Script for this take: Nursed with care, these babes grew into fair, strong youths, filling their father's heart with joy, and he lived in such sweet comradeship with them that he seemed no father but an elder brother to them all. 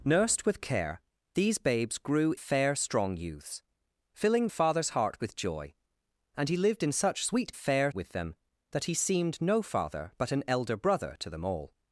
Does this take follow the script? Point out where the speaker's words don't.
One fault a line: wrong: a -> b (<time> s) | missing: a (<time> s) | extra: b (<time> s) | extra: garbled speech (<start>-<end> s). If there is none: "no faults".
missing: into (2.3 s)
missing: their (4.5 s)
wrong: comradeship -> fair (7.5 s)